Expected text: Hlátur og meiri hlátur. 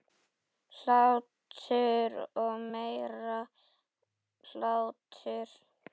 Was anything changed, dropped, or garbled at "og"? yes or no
no